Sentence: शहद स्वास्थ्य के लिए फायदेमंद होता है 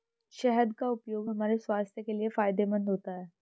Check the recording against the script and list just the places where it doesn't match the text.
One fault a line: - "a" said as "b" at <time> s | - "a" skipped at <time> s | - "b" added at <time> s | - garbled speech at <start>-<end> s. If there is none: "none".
- "का उपयोग हमारे" added at 0.7 s